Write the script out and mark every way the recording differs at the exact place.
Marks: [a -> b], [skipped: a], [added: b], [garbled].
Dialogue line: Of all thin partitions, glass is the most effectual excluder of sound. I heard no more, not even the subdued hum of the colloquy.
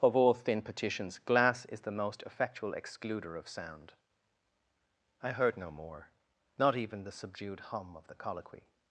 Of all thin partitions, glass is the most effectual excluder of sound. I heard no more, not even the subdued hum of the colloquy.